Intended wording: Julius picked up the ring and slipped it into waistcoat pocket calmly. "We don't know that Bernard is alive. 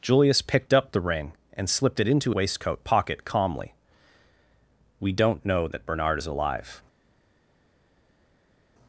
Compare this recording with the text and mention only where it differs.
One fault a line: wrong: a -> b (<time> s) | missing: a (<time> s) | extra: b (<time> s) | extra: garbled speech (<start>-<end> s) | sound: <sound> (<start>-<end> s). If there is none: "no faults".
no faults